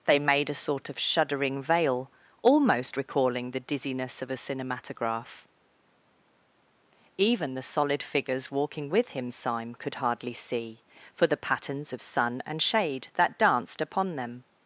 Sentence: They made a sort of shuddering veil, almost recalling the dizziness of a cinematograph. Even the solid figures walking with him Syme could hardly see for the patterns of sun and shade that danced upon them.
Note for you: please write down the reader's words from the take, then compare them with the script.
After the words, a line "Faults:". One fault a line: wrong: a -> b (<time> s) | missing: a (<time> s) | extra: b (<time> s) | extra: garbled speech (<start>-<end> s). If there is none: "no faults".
They made a sort of shuddering veil, almost recalling the dizziness of a cinematograph. Even the solid figures walking with him Syme could hardly see for the patterns of sun and shade that danced upon them.
Faults:
no faults